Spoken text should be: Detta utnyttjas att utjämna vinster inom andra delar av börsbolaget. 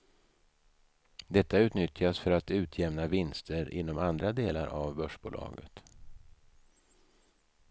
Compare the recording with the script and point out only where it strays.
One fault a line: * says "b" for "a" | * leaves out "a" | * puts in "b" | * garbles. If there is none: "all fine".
* puts in "för"